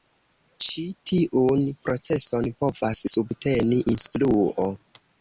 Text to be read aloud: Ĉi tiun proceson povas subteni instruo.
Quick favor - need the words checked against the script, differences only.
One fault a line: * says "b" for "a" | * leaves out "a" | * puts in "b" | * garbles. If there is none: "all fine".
all fine